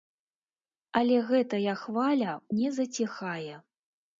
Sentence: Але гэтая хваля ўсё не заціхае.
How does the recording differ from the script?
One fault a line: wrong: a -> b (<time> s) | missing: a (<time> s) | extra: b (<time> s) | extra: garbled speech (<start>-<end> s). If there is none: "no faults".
missing: ўсё (2.3 s)